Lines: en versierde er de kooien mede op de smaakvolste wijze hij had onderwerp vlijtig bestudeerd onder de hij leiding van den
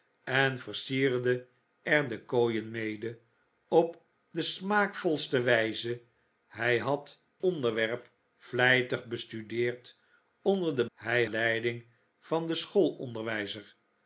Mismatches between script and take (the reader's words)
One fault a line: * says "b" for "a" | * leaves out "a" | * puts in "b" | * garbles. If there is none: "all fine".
all fine